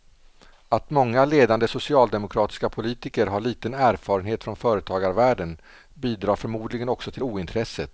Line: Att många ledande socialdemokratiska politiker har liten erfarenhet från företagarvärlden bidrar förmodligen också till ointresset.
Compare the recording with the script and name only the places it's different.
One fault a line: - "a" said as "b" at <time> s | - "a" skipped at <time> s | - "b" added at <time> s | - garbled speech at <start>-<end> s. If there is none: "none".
none